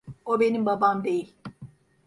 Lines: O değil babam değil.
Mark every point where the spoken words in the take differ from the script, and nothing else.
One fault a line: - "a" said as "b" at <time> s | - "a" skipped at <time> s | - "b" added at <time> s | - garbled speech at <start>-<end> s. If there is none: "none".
- "değil" said as "benim" at 0.4 s